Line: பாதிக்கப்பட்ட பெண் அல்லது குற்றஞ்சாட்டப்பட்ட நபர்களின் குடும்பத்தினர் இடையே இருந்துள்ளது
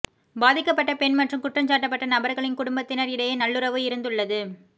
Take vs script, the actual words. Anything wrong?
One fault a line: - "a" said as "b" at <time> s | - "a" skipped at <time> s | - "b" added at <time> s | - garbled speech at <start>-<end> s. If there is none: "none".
- "அல்லது" said as "மற்றும்" at 1.2 s
- "நல்லுறவு" added at 3.4 s